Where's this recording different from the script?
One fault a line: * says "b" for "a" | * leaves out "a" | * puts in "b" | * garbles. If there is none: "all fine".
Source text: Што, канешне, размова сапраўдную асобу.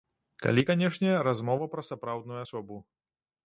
* says "Калі" for "Што"
* puts in "пра"